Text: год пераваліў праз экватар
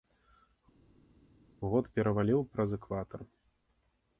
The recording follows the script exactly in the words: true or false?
true